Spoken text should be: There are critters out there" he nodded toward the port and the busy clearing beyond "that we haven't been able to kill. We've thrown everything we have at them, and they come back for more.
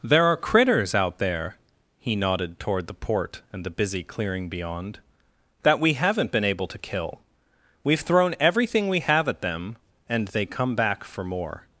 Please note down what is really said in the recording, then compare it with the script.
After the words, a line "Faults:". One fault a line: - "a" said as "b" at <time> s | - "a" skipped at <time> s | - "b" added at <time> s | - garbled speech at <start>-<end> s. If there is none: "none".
There are critters out there" he nodded toward the port and the busy clearing beyond "that we haven't been able to kill. We've thrown everything we have at them, and they come back for more.
Faults:
none